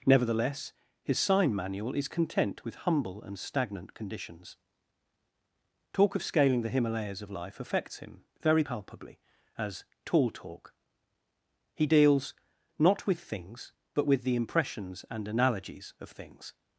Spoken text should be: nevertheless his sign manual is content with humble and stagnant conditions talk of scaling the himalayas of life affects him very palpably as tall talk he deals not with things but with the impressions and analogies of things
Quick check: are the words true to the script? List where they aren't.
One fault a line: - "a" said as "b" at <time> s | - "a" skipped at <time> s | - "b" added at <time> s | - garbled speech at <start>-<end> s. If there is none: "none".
none